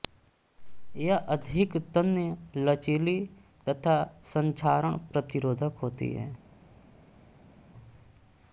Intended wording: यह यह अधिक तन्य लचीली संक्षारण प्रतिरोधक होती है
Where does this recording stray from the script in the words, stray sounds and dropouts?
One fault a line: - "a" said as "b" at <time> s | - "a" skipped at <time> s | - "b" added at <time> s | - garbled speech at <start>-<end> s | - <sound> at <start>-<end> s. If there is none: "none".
- "यह" skipped at 1.2 s
- "तथा" added at 3.7 s